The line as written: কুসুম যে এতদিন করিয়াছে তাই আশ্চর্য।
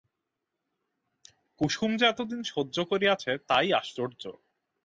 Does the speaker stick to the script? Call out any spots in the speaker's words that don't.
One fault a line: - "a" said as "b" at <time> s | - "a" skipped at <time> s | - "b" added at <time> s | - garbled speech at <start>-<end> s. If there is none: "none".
- "সহ্য" added at 2.4 s